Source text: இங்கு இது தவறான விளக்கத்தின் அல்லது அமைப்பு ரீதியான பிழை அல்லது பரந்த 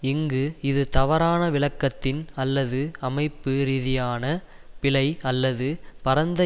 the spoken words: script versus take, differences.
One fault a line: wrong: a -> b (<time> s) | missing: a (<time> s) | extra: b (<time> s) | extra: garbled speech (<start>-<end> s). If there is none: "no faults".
no faults